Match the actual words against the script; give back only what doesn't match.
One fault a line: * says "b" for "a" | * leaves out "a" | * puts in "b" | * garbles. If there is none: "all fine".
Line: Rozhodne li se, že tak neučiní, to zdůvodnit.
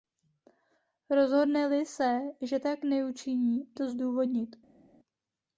all fine